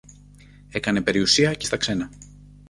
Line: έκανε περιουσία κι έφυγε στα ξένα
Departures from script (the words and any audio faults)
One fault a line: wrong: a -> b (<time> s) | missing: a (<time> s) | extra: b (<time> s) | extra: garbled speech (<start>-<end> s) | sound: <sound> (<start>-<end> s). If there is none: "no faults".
missing: έφυγε (1.7 s)